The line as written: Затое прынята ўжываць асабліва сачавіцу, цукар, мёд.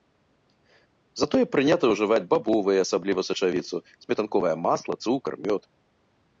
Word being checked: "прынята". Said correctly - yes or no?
yes